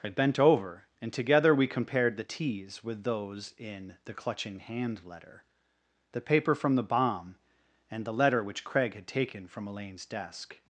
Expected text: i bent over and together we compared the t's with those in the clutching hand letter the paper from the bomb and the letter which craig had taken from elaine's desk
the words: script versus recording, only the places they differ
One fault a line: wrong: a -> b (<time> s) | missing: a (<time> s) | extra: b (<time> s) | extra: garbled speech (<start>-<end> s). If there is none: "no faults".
no faults